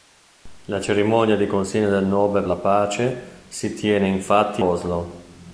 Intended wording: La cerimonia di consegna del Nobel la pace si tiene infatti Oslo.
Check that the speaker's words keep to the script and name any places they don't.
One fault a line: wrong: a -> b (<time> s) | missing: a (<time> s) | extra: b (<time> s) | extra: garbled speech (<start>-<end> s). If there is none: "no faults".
no faults